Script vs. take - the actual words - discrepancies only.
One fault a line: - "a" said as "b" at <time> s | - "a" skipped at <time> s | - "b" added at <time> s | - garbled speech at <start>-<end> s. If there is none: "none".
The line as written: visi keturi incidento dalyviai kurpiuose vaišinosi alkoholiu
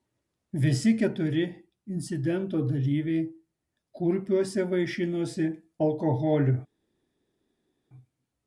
none